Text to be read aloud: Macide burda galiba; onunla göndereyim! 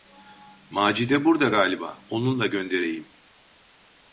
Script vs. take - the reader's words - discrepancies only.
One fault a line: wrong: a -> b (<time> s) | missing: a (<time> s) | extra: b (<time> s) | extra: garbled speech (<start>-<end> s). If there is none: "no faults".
no faults